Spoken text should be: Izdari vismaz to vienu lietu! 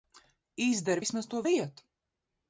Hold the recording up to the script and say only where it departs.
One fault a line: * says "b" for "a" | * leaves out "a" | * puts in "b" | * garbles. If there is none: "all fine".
* leaves out "vienu"